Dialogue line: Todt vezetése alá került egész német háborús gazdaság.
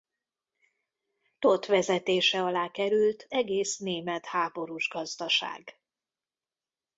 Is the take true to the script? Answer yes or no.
yes